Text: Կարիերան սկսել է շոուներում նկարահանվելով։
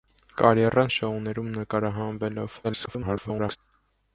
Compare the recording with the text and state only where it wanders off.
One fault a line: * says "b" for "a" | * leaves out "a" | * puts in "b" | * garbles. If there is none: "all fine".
* leaves out "սկսել"
* garbles